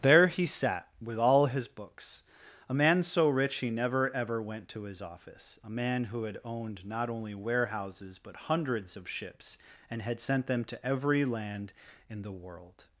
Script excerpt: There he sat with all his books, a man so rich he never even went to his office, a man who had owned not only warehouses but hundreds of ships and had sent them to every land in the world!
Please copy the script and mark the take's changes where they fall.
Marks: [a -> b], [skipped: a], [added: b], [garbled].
There he sat with all his books, a man so rich he never [even -> ever] went to his office, a man who had owned not only warehouses but hundreds of ships and had sent them to every land in the world!